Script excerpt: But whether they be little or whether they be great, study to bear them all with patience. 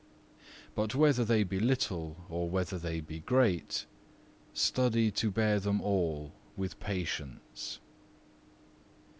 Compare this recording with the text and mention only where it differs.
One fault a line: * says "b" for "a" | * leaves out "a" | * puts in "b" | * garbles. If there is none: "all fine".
all fine